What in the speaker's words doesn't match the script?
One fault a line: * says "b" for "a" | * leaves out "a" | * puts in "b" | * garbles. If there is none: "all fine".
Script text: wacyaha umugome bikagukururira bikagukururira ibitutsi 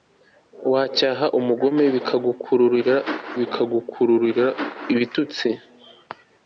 all fine